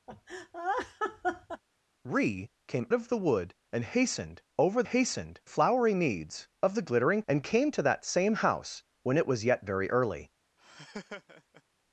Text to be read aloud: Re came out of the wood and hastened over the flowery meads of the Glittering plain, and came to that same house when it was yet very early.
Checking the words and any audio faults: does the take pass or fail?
fail